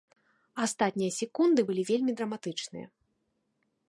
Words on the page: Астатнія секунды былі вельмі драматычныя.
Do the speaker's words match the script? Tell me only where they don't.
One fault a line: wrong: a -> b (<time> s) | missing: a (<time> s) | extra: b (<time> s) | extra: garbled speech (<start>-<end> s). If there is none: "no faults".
no faults